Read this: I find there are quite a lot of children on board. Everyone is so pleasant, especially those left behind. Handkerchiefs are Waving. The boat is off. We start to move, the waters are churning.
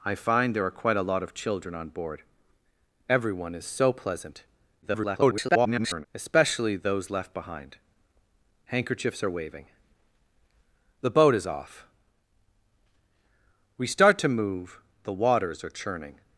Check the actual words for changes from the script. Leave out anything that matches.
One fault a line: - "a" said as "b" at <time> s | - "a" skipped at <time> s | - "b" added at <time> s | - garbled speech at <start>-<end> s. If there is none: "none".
- garbled speech at 4.8-6.1 s